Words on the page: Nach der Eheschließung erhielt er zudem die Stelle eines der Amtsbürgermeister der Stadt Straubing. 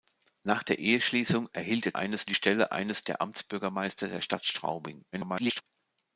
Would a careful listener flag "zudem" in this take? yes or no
yes